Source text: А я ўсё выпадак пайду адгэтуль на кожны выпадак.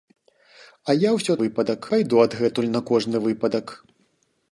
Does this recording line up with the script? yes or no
yes